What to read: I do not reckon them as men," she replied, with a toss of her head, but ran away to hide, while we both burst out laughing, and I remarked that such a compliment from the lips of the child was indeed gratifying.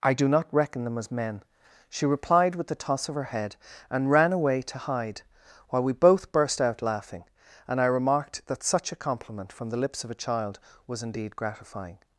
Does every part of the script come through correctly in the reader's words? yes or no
no